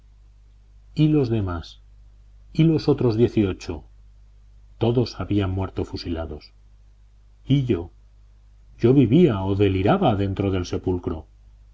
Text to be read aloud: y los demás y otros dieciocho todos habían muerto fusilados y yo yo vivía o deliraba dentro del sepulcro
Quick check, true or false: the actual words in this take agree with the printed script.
false